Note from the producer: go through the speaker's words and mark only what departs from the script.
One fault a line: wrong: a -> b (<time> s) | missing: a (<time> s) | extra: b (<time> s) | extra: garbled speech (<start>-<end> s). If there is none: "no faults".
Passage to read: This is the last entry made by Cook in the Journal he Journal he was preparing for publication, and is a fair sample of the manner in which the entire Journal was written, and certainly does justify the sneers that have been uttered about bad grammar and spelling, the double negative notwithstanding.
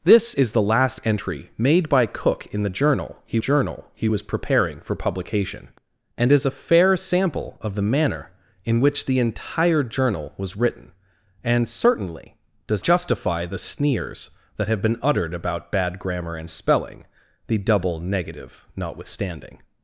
no faults